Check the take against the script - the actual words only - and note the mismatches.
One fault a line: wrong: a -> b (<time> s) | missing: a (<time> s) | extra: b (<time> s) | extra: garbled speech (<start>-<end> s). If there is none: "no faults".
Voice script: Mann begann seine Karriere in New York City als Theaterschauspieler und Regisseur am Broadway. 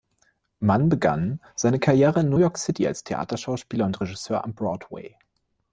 no faults